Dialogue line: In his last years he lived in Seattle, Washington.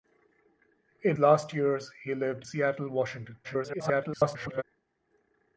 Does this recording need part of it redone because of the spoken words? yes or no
yes